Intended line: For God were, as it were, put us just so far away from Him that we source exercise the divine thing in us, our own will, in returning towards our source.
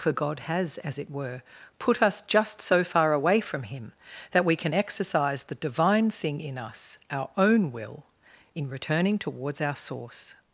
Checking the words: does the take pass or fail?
fail